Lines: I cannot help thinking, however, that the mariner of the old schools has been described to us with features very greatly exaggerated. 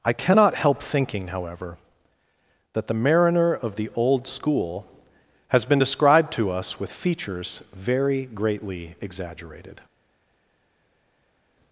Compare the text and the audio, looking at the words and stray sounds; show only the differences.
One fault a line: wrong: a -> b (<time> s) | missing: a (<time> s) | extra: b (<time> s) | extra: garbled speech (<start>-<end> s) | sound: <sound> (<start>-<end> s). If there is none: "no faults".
wrong: schools -> school (4.3 s)